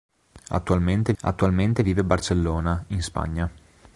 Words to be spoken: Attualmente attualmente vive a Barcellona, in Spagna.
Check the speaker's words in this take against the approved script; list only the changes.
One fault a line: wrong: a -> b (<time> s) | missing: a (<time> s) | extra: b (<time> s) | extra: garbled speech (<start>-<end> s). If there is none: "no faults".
no faults